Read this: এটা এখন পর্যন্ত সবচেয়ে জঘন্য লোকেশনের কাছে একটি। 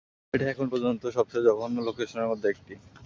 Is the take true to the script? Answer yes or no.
no